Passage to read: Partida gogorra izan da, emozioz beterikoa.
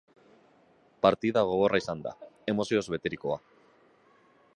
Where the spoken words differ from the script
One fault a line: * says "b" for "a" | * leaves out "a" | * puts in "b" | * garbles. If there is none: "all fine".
all fine